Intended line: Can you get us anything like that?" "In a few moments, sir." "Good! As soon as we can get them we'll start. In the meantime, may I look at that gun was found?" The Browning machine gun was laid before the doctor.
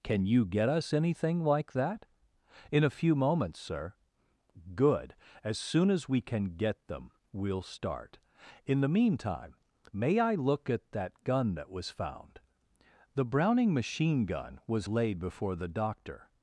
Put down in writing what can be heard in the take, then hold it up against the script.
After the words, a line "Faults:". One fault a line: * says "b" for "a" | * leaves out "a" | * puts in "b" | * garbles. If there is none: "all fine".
Can you get us anything like that?" "In a few moments, sir." "Good! As soon as we can get them we'll start. In the meantime, may I look at that gun that was found?" The Browning machine gun was laid before the doctor.
Faults:
* puts in "that"